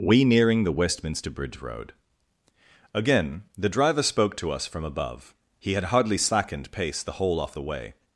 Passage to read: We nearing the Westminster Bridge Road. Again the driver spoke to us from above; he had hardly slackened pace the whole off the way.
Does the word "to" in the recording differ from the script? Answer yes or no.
no